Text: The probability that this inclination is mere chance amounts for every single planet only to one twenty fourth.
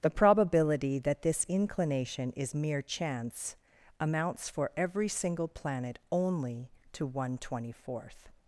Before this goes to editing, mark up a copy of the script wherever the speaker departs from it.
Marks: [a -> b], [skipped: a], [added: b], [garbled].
The probability that this inclination is mere chance amounts for every single planet only to one twenty fourth.